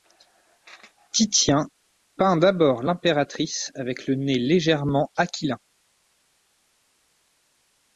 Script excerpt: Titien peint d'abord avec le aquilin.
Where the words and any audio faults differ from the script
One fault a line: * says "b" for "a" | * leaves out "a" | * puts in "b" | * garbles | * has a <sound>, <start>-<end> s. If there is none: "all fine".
* puts in "l'impératrice"
* puts in "nez légèrement"